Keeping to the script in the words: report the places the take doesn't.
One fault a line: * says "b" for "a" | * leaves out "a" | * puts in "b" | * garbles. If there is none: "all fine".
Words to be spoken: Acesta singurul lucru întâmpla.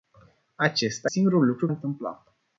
all fine